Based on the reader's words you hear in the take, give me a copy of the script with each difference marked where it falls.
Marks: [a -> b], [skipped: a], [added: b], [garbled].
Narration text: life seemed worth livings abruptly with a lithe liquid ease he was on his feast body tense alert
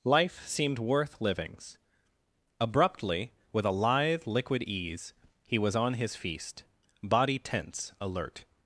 life seemed worth livings abruptly with a lithe liquid ease he was on his feast body tense alert